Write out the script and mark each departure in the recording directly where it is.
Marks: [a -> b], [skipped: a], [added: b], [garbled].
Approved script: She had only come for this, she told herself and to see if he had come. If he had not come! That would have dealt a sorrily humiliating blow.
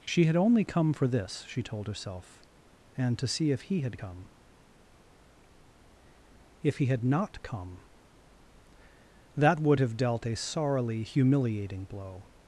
She had only come for this, she told herself and to see if he had come. If he had not come! That would have dealt a sorrily humiliating blow.